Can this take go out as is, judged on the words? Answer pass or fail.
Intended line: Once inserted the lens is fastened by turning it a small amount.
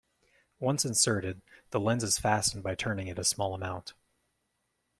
pass